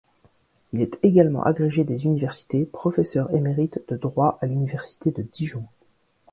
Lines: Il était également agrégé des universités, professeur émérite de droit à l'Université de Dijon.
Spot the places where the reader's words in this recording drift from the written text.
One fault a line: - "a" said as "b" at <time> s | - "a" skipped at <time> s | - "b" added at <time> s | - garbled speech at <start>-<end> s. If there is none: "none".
- "était" said as "est" at 0.8 s